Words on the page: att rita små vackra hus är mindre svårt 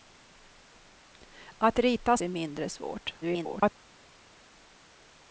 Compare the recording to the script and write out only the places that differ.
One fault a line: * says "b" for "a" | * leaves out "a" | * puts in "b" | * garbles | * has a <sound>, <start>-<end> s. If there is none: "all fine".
* leaves out "små vackra hus"
* garbles